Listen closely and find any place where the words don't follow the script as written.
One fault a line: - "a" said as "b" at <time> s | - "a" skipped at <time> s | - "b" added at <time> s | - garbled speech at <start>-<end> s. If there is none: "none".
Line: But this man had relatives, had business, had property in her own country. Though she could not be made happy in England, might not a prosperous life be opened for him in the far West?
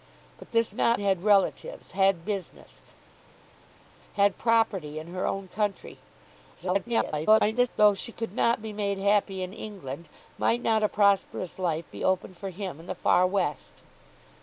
- "man" said as "not" at 0.7 s
- garbled speech at 6.5-7.7 s